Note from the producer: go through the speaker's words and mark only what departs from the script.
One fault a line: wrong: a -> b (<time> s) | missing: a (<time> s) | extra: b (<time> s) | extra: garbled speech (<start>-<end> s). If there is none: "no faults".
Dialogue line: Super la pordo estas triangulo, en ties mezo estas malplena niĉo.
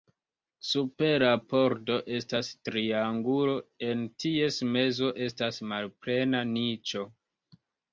no faults